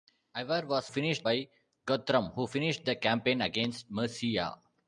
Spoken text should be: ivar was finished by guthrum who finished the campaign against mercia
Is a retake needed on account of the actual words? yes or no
no